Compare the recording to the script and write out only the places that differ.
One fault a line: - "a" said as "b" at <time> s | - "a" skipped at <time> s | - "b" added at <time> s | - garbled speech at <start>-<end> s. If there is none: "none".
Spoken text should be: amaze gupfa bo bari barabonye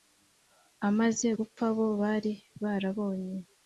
none